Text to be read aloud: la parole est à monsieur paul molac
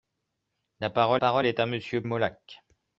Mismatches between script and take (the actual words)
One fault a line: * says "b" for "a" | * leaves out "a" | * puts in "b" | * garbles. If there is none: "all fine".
* puts in "parole"
* leaves out "paul"